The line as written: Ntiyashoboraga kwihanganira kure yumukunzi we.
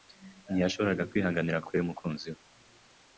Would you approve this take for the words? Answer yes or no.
yes